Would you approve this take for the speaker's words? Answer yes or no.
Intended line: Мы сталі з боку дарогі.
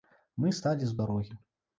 no